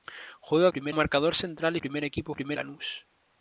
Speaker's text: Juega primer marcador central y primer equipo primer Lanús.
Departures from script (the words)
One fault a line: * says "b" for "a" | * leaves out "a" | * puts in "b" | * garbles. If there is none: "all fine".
all fine